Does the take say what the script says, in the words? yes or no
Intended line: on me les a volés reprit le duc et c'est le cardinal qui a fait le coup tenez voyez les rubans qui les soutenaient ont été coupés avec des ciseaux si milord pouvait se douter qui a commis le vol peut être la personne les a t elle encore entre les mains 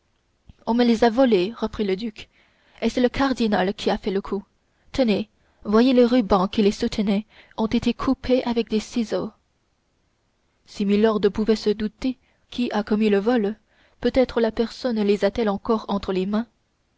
yes